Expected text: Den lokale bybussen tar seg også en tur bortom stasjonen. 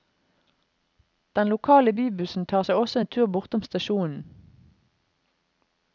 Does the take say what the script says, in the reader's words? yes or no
yes